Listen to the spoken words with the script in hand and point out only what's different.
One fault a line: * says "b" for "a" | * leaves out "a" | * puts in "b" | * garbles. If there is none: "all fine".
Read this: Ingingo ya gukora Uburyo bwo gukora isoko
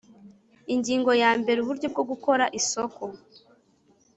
* says "mbere" for "gukora"